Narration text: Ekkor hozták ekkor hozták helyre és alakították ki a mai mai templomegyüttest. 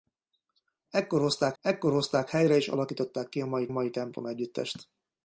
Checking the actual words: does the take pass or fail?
pass